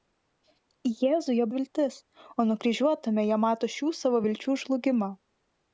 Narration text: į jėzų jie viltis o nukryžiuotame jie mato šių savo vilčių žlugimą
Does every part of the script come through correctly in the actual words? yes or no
yes